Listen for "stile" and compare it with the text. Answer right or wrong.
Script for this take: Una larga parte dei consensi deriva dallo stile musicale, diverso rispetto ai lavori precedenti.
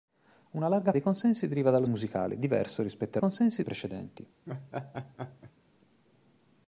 wrong